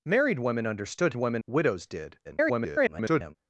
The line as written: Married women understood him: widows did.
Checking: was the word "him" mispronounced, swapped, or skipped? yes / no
yes